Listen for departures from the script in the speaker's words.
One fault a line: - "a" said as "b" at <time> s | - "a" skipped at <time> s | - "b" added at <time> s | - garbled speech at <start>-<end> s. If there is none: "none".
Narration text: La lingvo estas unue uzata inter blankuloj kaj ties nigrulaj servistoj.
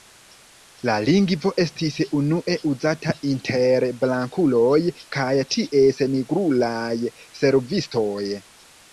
- "estas" said as "estis" at 1.6 s